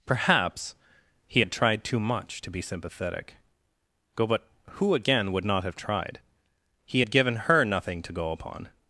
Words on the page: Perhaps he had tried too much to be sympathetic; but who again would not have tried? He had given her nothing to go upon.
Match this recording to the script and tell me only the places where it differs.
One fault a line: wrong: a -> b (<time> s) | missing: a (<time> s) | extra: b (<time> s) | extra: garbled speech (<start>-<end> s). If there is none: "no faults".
extra: go (4.1 s)